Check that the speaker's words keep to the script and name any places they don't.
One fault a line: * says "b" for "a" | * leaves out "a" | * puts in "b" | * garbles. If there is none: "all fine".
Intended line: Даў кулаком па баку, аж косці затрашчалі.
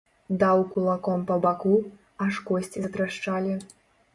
all fine